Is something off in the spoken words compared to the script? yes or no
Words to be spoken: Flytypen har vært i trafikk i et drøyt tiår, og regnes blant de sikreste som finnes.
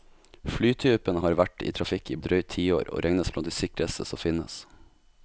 no